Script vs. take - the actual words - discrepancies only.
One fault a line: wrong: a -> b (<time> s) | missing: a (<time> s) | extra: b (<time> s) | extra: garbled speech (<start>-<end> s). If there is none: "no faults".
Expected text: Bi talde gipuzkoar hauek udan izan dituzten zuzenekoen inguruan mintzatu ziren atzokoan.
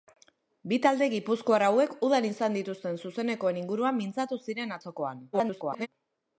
extra: garbled speech (5.3-5.9 s)